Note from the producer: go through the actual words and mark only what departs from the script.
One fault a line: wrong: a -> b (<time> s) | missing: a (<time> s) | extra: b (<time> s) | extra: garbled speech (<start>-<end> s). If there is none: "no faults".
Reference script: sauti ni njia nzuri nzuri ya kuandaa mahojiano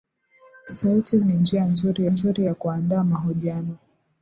no faults